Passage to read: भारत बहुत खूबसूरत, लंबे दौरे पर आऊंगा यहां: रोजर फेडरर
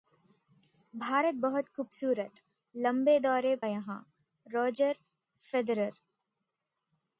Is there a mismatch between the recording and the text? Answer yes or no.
yes